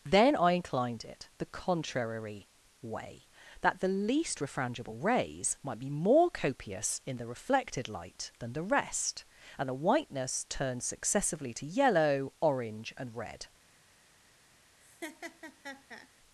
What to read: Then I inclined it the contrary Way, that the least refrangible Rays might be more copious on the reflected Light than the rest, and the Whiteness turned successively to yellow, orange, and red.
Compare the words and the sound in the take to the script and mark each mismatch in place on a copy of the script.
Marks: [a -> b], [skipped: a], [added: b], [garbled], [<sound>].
Then I inclined it the contrary Way, that the least refrangible Rays might be more copious [on -> in] the reflected Light than the rest, and the Whiteness turned successively to yellow, orange, and red. [laugh]